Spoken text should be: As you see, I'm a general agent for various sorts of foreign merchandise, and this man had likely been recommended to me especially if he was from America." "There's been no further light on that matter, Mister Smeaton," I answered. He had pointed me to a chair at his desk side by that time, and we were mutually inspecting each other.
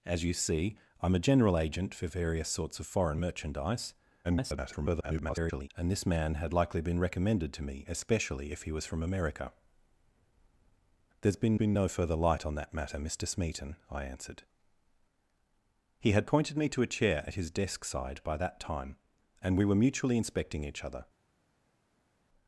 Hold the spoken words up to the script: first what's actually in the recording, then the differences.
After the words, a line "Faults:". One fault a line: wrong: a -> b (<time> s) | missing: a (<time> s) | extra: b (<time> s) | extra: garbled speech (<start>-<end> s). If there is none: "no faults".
As you see, I'm a general agent for various sorts of foreign merchandise, [garbled] and this man had likely been recommended to me especially if he was from America." "There's been been no further light on that matter, Mister Smeaton," I answered. He had pointed me to a chair at his desk side by that time, and we were mutually inspecting each other.
Faults:
extra: garbled speech (4.2-5.7 s)
extra: been (11.5 s)